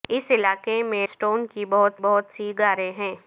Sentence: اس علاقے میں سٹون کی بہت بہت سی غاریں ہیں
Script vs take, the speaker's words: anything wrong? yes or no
no